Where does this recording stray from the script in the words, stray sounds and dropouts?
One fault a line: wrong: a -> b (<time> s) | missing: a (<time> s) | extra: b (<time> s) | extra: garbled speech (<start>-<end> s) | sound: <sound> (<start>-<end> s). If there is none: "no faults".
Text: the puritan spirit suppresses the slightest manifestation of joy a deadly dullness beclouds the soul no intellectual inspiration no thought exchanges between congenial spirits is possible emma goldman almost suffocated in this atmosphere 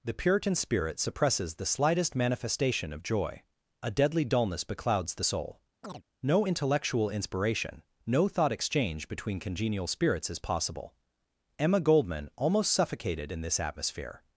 sound: chirp (5.8-6.0 s)
wrong: exchanges -> exchange (8.5 s)